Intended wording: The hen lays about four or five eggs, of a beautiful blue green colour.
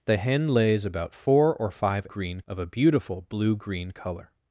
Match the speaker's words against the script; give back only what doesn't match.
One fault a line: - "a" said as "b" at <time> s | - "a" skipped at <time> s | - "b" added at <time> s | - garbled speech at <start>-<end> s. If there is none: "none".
- "eggs" said as "green" at 2.0 s